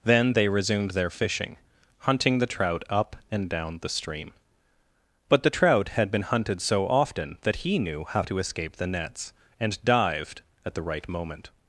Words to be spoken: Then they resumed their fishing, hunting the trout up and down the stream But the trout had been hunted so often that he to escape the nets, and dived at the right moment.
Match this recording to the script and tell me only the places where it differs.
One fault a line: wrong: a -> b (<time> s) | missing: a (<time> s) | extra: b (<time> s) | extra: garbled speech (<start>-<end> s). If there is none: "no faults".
extra: knew how (7.8 s)